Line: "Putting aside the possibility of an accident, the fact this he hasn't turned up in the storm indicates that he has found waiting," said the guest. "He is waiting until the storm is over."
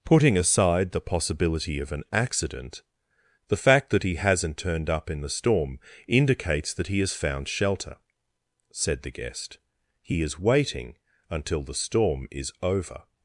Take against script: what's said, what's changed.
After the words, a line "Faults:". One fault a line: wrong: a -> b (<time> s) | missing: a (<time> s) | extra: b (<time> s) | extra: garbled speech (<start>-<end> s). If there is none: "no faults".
"Putting aside the possibility of an accident, the fact that he hasn't turned up in the storm indicates that he has found shelter," said the guest. "He is waiting until the storm is over."
Faults:
wrong: this -> that (3.9 s)
wrong: waiting -> shelter (7.5 s)